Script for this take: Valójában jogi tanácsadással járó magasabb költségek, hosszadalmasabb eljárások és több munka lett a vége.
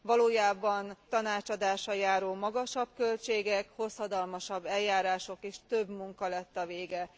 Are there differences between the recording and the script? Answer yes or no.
yes